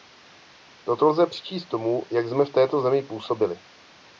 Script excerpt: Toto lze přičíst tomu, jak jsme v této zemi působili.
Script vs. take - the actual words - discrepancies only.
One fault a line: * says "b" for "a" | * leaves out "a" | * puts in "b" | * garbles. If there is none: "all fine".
all fine